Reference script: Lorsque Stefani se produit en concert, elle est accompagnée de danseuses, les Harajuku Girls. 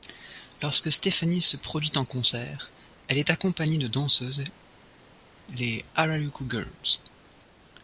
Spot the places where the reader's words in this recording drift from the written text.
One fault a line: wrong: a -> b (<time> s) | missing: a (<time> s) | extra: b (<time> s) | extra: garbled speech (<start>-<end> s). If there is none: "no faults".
no faults